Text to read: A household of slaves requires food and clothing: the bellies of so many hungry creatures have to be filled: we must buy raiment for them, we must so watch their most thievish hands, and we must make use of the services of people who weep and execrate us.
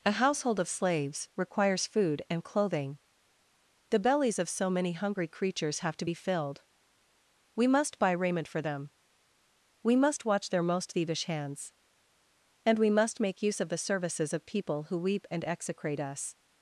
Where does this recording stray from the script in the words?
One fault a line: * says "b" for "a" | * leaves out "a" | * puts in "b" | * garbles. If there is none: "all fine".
* leaves out "so"